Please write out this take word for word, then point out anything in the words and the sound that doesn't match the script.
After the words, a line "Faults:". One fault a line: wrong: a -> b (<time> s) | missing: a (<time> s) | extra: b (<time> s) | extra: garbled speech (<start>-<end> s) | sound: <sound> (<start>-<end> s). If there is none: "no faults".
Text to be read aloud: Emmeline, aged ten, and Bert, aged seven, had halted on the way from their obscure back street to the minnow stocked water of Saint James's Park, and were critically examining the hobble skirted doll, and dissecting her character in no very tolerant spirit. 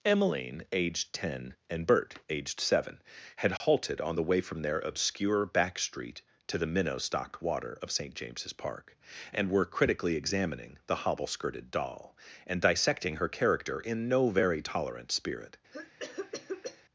Emmeline, aged ten, and Bert, aged seven, had halted on the way from their obscure back street to the minnow stocked water of Saint James's Park, and were critically examining the hobble skirted doll, and dissecting her character in no very tolerant spirit.
Faults:
sound: dropout (3.6-3.6 s)
sound: cough (15.7-16.8 s)